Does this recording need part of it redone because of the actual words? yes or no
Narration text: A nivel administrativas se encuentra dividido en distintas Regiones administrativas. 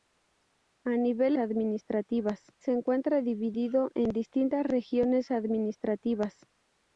no